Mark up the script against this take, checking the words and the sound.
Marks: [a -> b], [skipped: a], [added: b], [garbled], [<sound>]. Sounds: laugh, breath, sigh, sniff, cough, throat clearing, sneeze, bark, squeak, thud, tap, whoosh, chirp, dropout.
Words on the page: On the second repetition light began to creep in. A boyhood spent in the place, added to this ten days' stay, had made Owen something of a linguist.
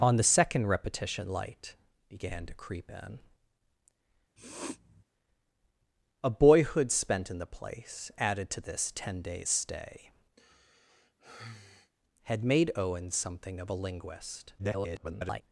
On the second repetition light began to creep in. [sniff] A boyhood spent in the place, added to this ten days' stay, [sigh] had made Owen something of a linguist. [garbled]